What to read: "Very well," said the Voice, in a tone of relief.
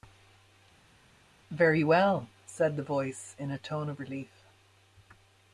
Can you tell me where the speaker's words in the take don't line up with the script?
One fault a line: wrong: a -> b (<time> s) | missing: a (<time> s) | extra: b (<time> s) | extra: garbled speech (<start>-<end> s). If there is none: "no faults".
no faults